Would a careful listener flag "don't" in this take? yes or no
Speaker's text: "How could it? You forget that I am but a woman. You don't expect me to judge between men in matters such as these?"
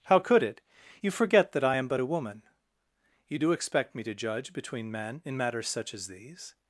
yes